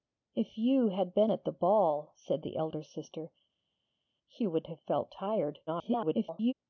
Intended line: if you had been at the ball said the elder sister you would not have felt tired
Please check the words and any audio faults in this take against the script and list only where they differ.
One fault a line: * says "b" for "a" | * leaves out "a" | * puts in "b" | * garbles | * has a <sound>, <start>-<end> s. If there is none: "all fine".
* leaves out "not"
* garbles